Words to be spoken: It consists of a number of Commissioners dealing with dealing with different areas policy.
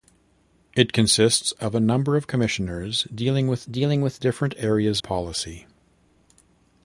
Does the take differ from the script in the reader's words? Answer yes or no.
no